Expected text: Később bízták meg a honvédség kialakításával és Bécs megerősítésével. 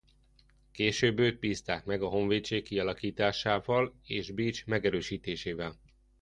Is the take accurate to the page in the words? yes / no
no